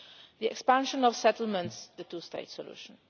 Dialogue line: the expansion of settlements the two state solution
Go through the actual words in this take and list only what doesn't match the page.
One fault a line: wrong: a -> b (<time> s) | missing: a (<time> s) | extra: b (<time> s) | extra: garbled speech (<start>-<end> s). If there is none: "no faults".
no faults